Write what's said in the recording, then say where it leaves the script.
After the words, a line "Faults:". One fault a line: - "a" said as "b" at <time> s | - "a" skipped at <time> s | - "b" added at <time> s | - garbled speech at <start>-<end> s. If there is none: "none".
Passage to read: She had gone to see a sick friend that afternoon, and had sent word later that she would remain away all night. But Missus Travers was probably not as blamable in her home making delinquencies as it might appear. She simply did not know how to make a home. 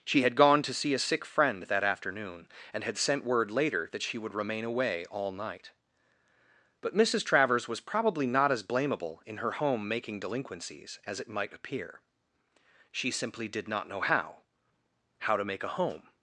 She had gone to see a sick friend that afternoon, and had sent word later that she would remain away all night. But Missus Travers was probably not as blamable in her home making delinquencies as it might appear. She simply did not know how how to make a home.
Faults:
- "how" added at 15.2 s